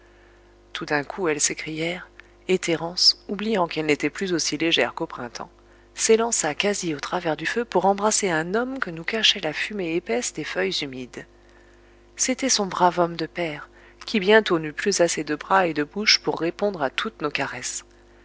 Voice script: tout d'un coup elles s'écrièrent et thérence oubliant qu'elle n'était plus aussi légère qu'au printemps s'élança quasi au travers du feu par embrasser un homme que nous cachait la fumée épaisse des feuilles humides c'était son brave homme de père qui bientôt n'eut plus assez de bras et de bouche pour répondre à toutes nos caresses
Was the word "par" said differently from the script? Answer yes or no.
yes